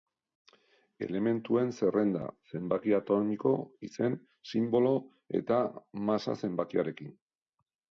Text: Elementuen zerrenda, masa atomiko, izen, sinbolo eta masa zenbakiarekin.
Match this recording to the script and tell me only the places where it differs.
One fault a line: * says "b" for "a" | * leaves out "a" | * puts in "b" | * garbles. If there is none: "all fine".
* says "zenbaki" for "masa"